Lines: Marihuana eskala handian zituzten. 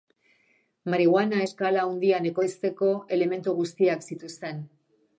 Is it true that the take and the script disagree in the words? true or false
true